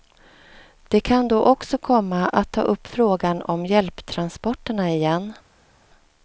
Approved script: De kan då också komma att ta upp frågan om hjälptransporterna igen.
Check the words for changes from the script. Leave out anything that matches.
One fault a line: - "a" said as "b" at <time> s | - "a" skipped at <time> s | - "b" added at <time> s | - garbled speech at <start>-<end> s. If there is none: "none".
none